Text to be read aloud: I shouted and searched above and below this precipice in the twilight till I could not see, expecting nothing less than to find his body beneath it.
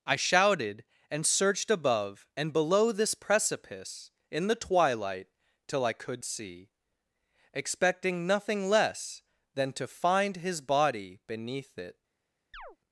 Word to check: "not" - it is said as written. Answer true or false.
false